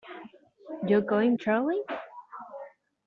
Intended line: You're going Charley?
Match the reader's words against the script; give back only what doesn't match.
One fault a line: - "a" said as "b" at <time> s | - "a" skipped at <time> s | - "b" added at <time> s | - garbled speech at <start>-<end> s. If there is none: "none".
none